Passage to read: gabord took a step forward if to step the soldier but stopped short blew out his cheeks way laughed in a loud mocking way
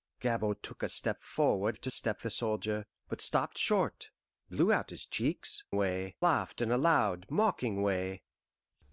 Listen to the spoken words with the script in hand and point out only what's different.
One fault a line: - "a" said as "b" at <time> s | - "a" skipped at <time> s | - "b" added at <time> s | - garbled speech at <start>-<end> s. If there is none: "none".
none